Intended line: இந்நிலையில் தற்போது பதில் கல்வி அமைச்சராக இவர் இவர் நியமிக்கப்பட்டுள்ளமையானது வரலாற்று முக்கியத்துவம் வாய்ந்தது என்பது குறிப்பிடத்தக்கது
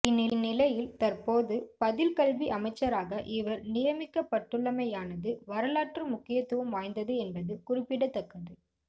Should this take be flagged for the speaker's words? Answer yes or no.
yes